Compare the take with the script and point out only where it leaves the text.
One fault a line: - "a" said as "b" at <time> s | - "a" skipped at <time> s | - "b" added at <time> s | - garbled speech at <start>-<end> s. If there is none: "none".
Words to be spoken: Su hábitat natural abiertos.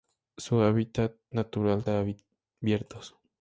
none